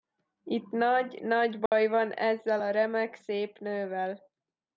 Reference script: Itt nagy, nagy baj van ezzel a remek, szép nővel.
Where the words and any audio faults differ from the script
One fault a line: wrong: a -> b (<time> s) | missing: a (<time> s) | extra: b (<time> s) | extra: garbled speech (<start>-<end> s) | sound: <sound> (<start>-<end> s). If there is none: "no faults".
sound: dropout (1.7-1.7 s)